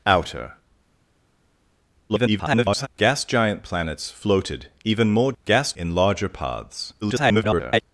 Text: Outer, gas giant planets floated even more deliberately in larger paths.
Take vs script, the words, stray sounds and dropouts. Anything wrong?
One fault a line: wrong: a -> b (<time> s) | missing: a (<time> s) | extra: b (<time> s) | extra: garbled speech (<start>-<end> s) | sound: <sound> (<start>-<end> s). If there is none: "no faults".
extra: garbled speech (2.1-2.9 s)
wrong: deliberately -> gas (5.4 s)
extra: garbled speech (7.0-7.8 s)